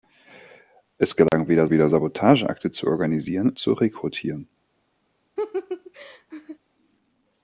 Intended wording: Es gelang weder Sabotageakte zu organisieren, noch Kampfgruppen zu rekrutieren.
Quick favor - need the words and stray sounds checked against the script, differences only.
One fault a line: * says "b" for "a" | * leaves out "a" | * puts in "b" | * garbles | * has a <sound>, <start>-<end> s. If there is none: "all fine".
* has a dropout, 1.3-1.3 s
* puts in "weder"
* leaves out "noch Kampfgruppen"
* has a laugh, 5.4-6.6 s